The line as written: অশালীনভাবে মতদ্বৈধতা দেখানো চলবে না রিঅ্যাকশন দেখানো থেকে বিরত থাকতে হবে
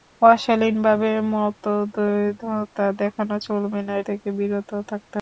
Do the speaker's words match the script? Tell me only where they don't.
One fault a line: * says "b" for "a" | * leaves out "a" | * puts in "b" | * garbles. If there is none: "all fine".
* leaves out "রিঅ্যাকশন দেখানো"